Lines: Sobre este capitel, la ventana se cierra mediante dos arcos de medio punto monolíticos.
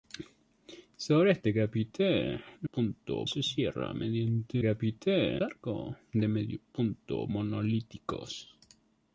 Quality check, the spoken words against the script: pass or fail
fail